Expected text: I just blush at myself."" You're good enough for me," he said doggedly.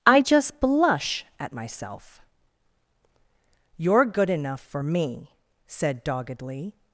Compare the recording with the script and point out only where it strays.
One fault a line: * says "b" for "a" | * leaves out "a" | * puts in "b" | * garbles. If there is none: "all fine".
* leaves out "he"